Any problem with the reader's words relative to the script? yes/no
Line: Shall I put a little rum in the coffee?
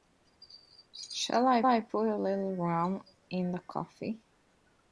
yes